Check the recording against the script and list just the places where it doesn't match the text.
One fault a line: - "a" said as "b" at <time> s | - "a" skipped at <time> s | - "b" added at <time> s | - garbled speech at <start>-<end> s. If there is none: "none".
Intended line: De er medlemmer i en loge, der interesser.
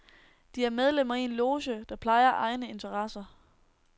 - "plejer egne" added at 1.9 s